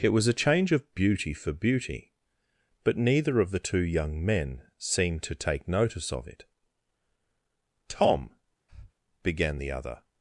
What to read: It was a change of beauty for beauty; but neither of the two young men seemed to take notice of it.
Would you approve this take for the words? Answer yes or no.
no